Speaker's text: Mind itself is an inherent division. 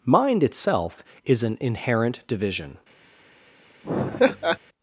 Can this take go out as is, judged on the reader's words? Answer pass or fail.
pass